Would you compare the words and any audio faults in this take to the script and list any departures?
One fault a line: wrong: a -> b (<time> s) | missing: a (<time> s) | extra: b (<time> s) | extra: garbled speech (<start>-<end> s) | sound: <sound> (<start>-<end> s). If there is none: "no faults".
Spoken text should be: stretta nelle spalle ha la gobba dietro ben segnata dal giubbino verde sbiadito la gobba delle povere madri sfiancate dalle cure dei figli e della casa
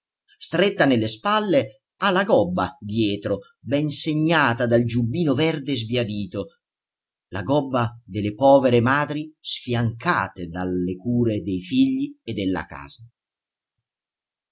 no faults